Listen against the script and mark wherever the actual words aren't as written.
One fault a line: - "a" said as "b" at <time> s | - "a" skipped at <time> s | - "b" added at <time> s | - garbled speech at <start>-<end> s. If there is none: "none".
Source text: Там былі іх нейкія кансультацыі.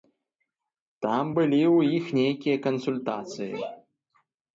- "ў" added at 1.8 s